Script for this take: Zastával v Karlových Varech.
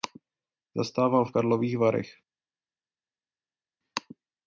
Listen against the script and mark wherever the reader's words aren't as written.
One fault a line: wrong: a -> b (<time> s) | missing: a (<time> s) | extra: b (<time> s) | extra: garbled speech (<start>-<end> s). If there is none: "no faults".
no faults